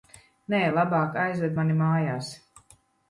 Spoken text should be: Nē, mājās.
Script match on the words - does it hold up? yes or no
no